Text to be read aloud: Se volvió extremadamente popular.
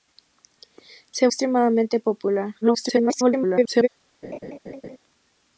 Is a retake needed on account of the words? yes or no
yes